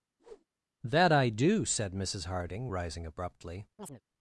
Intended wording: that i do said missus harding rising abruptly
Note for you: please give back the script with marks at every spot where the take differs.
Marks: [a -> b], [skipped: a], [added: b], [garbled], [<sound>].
[whoosh] that i do said missus harding rising abruptly [chirp]